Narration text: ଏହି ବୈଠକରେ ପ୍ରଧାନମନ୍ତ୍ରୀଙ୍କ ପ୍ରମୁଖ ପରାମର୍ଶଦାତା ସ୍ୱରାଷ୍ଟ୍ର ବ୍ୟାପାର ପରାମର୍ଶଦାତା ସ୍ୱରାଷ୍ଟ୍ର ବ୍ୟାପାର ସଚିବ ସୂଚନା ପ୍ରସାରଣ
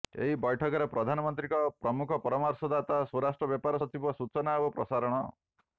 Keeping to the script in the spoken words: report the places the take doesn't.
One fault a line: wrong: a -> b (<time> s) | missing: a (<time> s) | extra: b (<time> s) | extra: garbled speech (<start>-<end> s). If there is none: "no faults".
missing: ପରାମର୍ଶଦାତା ସ୍ୱରାଷ୍ଟ୍ର ବ୍ୟାପାର (3.8 s)
extra: ଓ (4.6 s)